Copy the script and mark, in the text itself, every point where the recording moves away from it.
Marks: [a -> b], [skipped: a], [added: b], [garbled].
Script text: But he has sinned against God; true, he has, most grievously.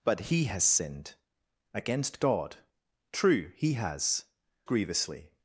But he has sinned against God; true, he has, [skipped: most] grievously.